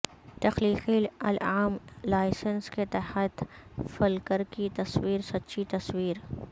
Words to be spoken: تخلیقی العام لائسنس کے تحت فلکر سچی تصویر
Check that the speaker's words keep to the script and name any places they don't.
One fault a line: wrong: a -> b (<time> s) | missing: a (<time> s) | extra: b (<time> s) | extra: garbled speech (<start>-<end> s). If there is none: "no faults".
extra: کی تصویر (4.5 s)